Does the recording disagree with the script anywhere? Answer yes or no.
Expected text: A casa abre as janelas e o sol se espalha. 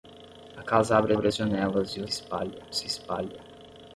yes